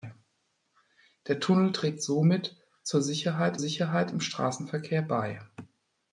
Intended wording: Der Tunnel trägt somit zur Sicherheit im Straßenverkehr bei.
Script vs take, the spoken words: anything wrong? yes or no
yes